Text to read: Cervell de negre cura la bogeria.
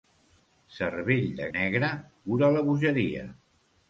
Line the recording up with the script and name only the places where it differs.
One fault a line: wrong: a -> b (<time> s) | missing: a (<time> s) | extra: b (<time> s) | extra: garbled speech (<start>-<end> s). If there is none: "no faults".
no faults